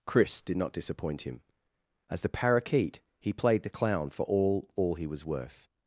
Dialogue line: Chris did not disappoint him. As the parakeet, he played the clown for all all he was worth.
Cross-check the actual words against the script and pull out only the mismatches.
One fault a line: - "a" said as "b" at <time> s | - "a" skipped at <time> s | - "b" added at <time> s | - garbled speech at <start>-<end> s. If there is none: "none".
none